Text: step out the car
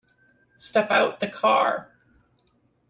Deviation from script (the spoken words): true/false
false